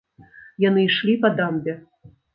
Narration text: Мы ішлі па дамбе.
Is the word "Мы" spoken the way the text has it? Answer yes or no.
no